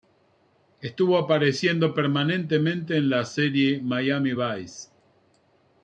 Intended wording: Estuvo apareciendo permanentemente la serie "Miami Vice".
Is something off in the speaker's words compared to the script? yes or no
yes